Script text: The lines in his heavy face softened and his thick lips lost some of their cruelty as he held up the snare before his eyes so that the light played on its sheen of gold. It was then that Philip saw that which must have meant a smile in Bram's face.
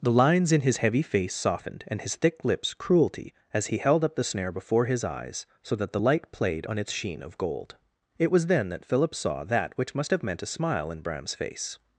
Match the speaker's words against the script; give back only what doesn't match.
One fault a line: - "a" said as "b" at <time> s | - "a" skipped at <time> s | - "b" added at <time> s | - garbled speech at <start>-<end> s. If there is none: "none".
- "lost some of their" skipped at 2.7 s